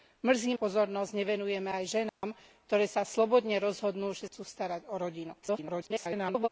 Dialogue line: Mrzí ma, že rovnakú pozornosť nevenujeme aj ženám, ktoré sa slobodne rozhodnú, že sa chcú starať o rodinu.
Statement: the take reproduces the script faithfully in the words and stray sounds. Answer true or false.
false